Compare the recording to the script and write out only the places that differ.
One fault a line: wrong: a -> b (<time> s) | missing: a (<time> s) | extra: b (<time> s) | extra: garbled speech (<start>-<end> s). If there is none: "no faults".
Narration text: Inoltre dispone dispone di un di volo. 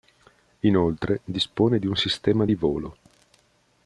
missing: dispone (1.8 s)
extra: sistema (1.9 s)